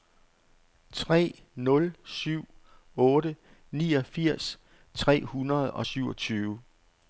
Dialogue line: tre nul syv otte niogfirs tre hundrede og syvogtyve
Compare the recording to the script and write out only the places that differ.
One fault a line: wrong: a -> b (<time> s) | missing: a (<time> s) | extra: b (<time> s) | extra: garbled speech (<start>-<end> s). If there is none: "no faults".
no faults